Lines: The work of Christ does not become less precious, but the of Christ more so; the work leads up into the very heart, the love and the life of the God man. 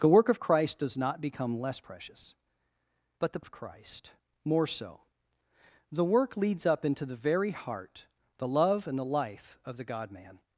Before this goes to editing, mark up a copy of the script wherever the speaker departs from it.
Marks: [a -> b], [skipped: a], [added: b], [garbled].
The work of Christ does not become less precious, but the of Christ more so; the work leads up into the very heart, the love and the life of the God man.